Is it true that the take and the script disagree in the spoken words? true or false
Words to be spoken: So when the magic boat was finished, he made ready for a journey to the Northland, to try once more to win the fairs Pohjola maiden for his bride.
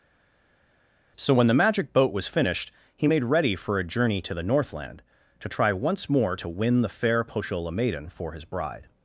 true